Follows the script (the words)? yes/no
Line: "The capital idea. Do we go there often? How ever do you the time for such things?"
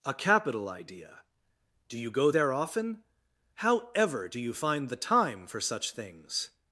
no